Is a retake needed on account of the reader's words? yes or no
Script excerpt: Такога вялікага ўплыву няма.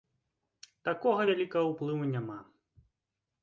no